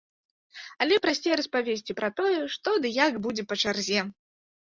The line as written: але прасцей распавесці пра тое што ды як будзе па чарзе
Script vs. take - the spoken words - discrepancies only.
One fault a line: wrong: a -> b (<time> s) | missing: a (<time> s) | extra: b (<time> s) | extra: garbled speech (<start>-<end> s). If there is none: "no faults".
no faults